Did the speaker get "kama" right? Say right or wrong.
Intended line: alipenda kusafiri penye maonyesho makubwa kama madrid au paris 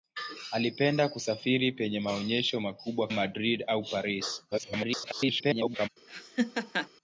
wrong